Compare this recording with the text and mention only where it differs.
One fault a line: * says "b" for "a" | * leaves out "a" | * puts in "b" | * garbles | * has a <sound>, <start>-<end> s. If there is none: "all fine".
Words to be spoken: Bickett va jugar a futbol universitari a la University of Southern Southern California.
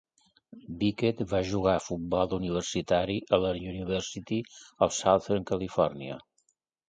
* leaves out "Southern"